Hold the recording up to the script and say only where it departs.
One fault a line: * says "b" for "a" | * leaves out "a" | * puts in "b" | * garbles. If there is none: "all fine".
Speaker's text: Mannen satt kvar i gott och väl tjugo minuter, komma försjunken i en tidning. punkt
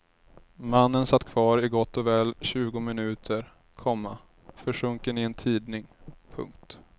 all fine